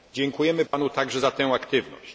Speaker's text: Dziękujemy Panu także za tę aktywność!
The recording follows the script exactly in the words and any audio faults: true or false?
false